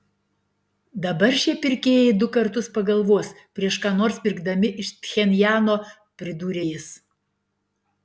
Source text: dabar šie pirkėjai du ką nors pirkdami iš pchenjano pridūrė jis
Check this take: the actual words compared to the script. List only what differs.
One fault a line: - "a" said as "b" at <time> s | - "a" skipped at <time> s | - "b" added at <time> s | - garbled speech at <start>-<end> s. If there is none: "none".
- "kartus pagalvos prieš" added at 2.4 s